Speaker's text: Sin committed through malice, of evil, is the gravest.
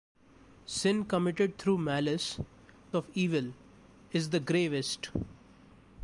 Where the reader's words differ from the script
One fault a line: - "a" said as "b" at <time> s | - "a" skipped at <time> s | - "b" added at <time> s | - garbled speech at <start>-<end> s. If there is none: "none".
none